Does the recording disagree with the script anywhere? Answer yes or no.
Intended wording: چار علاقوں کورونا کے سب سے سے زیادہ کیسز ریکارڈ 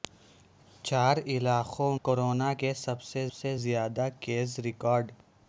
no